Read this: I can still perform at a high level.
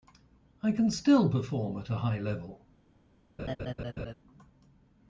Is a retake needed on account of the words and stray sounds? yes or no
yes